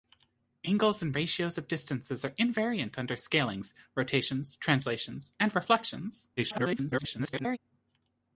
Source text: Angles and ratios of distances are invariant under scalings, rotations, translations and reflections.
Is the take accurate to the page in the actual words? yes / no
no